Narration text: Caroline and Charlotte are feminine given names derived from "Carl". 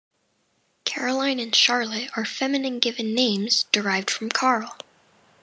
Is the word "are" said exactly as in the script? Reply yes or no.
yes